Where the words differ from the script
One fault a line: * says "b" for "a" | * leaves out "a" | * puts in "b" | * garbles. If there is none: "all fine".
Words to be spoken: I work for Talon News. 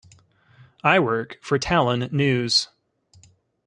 all fine